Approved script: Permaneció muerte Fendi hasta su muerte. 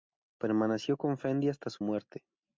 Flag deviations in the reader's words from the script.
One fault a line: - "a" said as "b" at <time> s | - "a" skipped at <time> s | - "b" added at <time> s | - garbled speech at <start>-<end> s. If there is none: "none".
- "muerte" said as "con" at 1.0 s